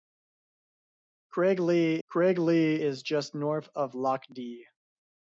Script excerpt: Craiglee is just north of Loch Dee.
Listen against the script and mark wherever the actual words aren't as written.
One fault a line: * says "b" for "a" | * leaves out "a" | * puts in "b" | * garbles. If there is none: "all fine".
* puts in "craiglee"